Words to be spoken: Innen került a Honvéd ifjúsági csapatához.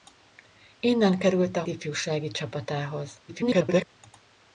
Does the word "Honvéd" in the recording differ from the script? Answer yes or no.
yes